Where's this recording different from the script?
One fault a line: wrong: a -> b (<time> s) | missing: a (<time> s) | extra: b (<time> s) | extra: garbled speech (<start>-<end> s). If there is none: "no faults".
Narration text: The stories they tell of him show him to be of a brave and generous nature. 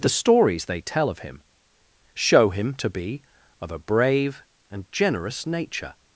no faults